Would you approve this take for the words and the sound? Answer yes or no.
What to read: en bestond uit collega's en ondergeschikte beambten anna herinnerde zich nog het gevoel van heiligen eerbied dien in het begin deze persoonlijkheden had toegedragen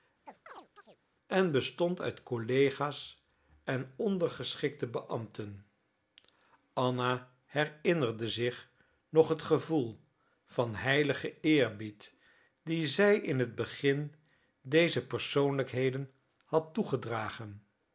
no